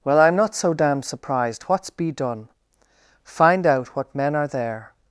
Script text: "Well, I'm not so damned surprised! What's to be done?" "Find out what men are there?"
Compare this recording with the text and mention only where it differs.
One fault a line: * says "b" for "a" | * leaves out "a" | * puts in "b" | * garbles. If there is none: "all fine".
* leaves out "to"